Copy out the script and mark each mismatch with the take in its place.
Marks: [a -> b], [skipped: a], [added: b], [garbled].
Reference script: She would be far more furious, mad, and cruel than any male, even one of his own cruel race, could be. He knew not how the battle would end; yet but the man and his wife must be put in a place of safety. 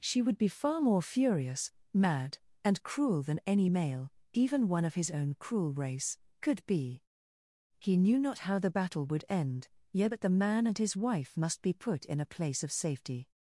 She would be far more furious, mad, and cruel than any male, even one of his own cruel race, could be. He knew not how the battle would end; yet but the man and his wife must be put in a place of safety.